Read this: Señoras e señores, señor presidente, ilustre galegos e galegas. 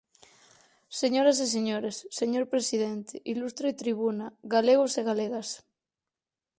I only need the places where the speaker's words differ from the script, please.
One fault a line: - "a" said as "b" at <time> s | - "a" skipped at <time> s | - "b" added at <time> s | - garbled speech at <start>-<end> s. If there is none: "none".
- "tribuna" added at 3.8 s